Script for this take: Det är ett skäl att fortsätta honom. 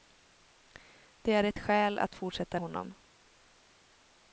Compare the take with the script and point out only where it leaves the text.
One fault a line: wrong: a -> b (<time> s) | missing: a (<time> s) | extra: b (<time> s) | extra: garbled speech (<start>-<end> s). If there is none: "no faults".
no faults